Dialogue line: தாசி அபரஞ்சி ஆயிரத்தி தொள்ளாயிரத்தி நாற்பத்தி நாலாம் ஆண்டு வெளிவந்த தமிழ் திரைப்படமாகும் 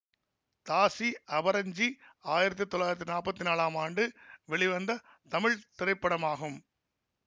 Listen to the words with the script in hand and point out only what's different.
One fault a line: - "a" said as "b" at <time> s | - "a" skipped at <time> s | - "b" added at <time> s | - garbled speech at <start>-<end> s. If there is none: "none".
none